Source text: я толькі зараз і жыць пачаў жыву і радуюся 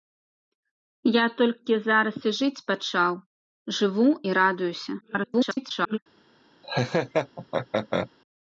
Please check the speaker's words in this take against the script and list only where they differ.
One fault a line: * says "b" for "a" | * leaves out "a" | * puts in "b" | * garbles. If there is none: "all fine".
* garbles